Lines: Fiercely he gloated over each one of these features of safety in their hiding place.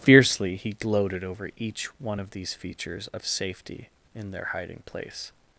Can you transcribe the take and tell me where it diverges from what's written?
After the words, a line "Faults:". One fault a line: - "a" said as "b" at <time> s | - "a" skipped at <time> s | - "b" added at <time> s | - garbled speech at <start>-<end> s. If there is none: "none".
Fiercely he gloated over each one of these features of safety in their hiding place.
Faults:
none